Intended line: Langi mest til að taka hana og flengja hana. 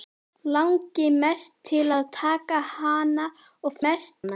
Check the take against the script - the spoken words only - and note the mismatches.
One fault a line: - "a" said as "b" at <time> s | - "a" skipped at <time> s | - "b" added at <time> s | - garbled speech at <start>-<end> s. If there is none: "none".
- "flengja" said as "mest" at 3.8 s